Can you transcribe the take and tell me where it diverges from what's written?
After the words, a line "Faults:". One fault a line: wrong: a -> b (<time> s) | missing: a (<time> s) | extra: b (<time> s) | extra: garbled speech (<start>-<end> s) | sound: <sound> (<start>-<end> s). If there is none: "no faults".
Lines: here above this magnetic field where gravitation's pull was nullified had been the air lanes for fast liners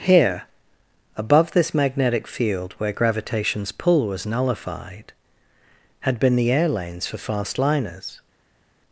here above this magnetic field where gravitation's pull was nullified had been the air lanes for fast liners
Faults:
no faults